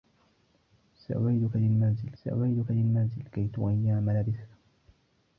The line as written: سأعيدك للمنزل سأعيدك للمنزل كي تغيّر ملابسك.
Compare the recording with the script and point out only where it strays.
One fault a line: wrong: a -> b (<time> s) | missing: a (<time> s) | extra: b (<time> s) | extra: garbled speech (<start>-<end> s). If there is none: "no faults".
no faults